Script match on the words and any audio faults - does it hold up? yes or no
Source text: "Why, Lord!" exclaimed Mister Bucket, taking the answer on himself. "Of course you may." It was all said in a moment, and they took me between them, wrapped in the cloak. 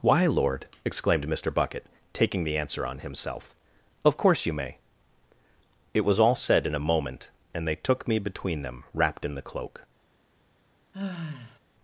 no